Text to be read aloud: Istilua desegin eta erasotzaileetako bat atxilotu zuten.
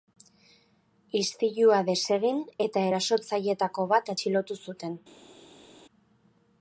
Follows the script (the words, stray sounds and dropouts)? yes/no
yes